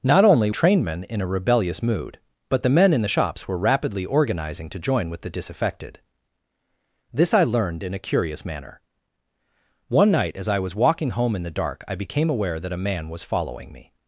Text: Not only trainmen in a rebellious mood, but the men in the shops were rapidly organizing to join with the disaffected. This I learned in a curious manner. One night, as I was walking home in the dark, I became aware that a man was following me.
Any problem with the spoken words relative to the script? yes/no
no